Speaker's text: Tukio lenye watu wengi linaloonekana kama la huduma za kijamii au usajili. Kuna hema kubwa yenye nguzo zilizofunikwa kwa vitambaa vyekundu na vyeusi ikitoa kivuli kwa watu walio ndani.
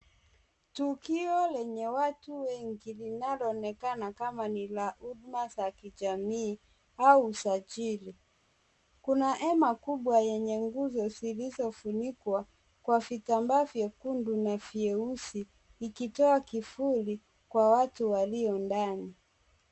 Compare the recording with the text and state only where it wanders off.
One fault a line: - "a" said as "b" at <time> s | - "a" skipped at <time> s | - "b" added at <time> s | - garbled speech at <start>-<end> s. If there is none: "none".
- "ni" added at 4.5 s